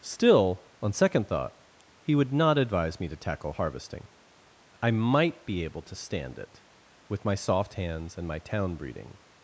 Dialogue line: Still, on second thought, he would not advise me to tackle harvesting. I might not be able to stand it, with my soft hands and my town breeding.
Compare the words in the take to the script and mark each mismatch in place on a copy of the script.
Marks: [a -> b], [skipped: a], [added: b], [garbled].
Still, on second thought, he would not advise me to tackle harvesting. I might [skipped: not] be able to stand it, with my soft hands and my town breeding.